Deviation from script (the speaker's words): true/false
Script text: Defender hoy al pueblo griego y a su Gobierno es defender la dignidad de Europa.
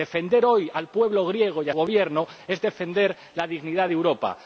true